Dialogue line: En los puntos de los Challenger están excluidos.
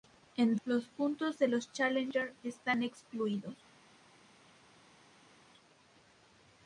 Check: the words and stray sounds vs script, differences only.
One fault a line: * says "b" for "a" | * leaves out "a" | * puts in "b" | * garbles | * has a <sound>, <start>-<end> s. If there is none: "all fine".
all fine